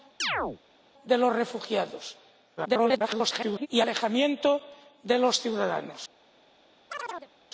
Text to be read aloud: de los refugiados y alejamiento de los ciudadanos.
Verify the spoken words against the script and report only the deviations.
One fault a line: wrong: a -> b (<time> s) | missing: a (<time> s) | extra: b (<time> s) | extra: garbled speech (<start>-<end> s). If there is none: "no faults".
extra: garbled speech (2.6-3.7 s)